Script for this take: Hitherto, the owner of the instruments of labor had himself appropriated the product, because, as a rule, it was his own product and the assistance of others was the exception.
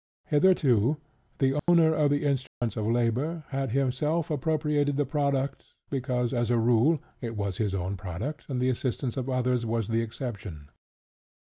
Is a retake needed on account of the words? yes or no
no